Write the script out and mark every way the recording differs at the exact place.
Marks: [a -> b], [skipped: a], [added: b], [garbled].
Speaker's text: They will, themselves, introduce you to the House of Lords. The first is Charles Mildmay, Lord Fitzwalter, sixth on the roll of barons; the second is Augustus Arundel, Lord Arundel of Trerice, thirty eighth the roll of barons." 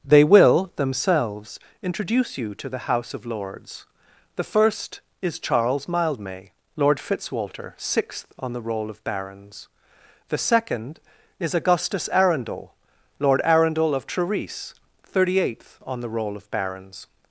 They will, themselves, introduce you to the House of Lords. The first is Charles Mildmay, Lord Fitzwalter, sixth on the roll of barons; the second is Augustus Arundel, Lord Arundel of Trerice, thirty eighth [added: on] the roll of barons."